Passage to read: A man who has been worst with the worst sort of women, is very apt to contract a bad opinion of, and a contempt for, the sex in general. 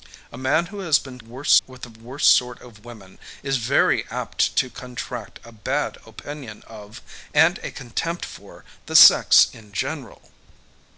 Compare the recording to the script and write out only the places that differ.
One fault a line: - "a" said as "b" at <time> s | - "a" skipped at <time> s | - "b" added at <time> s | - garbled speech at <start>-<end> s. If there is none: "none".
none